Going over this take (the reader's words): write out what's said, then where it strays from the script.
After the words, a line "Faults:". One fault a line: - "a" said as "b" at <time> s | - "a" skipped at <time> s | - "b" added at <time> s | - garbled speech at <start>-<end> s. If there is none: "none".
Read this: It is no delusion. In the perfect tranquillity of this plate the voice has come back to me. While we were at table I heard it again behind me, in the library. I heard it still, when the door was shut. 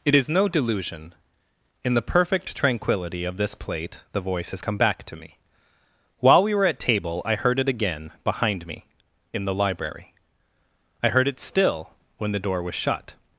It is no delusion. In the perfect tranquillity of this plate the voice has come back to me. While we were at table I heard it again behind me, in the library. I heard it still, when the door was shut.
Faults:
none